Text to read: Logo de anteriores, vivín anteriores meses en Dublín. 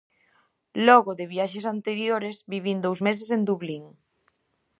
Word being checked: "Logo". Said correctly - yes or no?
yes